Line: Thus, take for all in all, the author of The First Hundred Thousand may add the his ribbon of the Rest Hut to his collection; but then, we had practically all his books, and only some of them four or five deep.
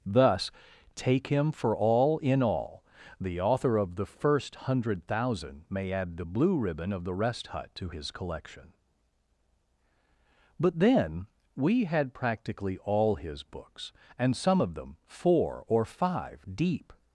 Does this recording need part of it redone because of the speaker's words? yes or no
yes